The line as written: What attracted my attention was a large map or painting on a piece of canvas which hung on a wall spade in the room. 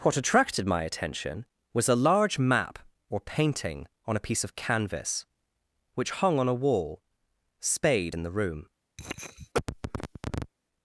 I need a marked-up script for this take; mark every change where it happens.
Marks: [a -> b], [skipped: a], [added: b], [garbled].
What attracted my attention was a large map or painting on a piece of canvas which hung on a wall spade in the room.